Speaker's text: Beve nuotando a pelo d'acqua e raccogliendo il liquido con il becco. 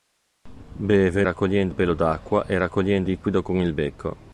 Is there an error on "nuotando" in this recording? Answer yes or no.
yes